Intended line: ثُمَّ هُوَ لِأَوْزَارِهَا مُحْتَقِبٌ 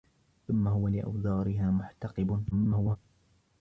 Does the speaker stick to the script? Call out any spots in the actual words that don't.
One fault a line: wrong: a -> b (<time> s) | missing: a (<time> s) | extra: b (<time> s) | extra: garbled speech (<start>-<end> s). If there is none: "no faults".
extra: garbled speech (2.5-3.0 s)